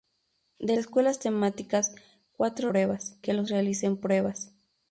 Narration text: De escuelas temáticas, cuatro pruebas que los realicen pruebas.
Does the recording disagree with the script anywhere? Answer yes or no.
no